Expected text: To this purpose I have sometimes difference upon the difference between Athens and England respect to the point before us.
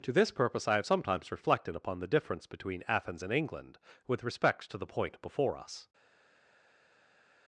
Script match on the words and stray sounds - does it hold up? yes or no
no